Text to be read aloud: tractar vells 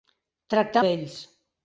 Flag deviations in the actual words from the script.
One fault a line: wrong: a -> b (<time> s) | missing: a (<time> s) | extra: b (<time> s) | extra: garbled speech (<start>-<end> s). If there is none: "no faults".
no faults